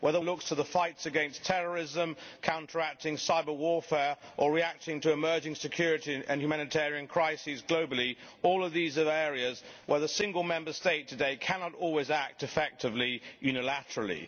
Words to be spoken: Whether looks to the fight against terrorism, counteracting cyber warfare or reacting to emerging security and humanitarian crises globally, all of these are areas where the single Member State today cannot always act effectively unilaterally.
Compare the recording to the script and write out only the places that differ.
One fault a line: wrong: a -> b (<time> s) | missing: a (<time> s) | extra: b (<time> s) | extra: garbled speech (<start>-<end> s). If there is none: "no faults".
no faults